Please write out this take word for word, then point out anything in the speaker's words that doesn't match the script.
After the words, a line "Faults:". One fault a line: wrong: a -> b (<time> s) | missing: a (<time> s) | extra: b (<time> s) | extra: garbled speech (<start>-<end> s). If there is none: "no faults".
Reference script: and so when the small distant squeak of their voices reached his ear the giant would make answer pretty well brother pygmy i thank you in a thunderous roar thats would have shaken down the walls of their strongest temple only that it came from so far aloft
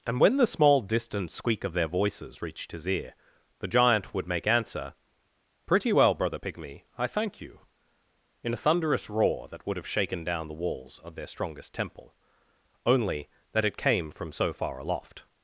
and when the small distant squeak of their voices reached his ear the giant would make answer pretty well brother pygmy i thank you in a thunderous roar that would have shaken down the walls of their strongest temple only that it came from so far aloft
Faults:
missing: so (0.2 s)
wrong: thats -> that (9.5 s)